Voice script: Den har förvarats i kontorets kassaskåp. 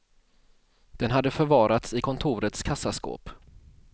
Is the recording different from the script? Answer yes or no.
yes